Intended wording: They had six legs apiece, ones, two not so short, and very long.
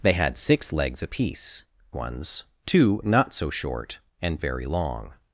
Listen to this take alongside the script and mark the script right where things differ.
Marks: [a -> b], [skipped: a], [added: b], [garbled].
They had six legs apiece, ones, two not so short, and very long.